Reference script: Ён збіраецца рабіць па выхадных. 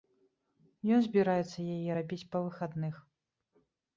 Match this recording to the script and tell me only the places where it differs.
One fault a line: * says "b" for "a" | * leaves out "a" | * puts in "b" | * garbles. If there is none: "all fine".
* puts in "яе"